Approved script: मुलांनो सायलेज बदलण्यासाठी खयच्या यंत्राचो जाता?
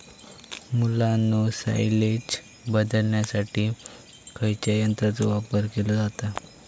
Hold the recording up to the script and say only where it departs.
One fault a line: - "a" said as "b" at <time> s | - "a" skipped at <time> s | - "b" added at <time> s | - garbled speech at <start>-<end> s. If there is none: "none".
- "वापर केलो" added at 5.3 s